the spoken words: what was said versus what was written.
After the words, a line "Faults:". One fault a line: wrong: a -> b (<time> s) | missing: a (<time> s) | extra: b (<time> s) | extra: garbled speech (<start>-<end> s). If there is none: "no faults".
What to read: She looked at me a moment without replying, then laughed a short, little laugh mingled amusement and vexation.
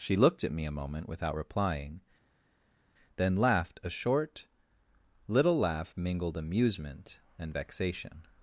She looked at me a moment without replying, then laughed a short, little laugh mingled amusement and vexation.
Faults:
no faults